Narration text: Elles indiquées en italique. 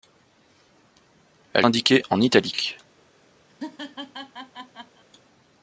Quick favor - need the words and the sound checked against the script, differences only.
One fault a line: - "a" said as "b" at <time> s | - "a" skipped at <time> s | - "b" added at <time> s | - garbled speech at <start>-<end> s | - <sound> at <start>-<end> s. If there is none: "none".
- laugh at 3.5-5.0 s